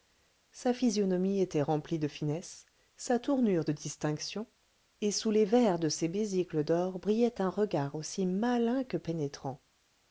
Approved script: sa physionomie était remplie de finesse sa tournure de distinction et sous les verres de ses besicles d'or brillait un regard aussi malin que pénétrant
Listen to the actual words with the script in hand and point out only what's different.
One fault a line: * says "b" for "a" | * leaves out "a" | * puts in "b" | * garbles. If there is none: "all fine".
all fine